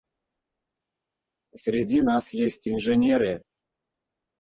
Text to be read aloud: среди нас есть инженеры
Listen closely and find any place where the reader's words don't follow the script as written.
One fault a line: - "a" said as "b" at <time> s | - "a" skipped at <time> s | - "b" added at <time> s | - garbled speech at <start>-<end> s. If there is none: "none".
none